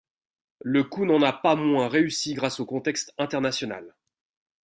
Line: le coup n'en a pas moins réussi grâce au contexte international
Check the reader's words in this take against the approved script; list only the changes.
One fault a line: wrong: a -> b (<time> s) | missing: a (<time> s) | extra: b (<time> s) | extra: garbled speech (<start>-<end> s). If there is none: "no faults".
no faults